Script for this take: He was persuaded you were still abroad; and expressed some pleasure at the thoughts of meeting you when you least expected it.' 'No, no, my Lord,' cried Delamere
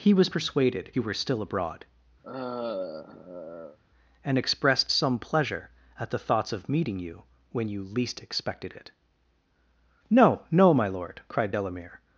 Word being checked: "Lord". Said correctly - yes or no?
yes